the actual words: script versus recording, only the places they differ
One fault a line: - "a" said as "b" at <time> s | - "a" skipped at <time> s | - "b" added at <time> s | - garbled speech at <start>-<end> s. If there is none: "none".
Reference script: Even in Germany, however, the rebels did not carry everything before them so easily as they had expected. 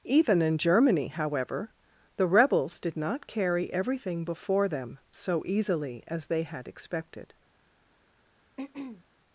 none